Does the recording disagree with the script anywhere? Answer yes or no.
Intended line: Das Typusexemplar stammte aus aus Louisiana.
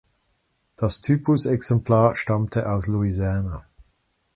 yes